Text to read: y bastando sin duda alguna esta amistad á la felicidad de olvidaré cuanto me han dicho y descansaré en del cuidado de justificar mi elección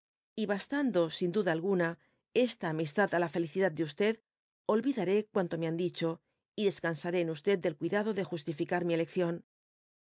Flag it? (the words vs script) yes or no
no